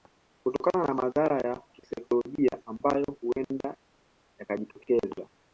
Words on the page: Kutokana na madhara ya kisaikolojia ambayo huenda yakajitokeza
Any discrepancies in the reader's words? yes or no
no